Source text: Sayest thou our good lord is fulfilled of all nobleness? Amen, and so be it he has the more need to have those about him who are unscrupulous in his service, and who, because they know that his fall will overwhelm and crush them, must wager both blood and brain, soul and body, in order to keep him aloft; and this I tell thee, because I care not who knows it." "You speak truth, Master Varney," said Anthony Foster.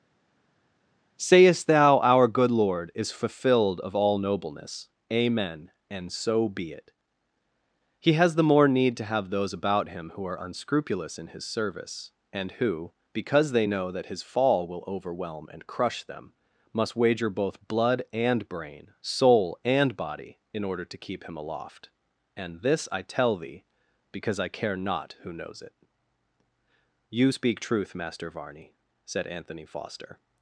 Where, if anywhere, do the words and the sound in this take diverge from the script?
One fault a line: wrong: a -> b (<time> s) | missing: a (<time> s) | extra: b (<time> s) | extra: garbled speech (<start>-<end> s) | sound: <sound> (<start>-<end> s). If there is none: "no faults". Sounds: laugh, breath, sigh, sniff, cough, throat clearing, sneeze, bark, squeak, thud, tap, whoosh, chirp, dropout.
no faults